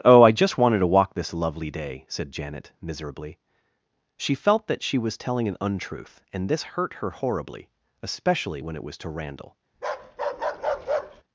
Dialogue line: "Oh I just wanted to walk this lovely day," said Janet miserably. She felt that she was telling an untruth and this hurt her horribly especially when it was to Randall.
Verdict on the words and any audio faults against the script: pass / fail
fail